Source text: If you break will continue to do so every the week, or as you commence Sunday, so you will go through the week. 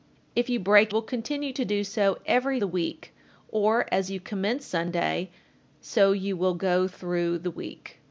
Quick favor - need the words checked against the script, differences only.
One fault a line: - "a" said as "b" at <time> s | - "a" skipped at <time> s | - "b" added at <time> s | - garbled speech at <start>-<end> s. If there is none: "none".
none